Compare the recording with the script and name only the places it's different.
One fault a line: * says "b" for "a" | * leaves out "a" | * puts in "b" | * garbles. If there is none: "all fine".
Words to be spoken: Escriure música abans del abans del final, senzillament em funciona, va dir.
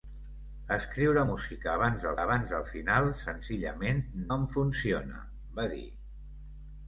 all fine